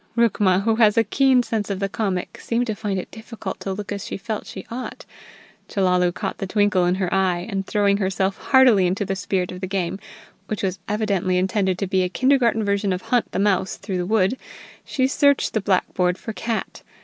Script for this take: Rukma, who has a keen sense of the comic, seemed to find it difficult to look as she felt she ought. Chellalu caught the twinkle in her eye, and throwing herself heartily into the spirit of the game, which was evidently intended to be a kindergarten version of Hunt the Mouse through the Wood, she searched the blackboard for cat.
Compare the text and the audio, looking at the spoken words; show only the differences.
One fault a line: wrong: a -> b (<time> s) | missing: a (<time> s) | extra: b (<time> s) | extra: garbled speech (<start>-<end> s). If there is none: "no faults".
no faults